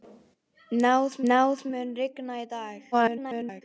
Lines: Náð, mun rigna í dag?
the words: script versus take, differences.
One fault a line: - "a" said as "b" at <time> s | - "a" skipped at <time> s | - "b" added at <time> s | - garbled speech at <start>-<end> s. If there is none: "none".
- "náð" added at 1.3 s
- garbled speech at 2.9-3.6 s